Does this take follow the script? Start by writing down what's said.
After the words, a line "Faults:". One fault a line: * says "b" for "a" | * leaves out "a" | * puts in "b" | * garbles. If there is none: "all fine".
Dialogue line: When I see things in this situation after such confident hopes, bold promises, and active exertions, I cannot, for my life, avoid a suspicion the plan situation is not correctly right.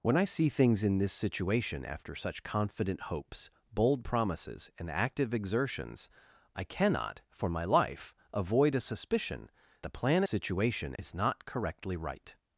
When I see things in this situation after such confident hopes, bold promises, and active exertions, I cannot, for my life, avoid a suspicion the plan situation is not correctly right.
Faults:
all fine